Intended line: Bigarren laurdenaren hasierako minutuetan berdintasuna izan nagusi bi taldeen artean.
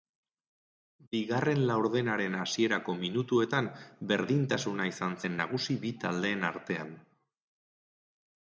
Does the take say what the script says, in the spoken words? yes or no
no